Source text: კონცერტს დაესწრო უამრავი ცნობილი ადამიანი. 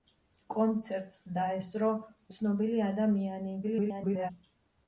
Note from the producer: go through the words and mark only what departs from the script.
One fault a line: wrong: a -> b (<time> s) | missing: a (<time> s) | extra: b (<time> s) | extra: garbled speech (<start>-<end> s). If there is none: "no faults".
missing: უამრავი (1.9 s)
extra: garbled speech (3.6-4.3 s)